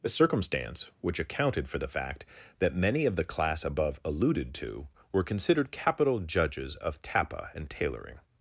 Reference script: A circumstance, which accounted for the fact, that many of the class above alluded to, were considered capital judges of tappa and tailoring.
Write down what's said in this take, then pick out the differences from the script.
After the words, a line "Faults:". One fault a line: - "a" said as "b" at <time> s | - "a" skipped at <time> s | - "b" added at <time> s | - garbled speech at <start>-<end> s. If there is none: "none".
A circumstance, which accounted for the fact, that many of the class above alluded to, were considered capital judges of tappa and tailoring.
Faults:
none